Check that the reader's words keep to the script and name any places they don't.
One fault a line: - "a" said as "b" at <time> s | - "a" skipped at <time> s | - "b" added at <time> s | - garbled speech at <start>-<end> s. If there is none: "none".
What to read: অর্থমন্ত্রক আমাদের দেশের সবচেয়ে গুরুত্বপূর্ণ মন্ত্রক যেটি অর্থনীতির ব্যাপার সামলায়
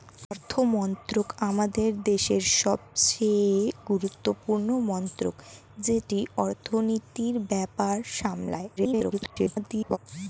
- garbled speech at 8.8-10.0 s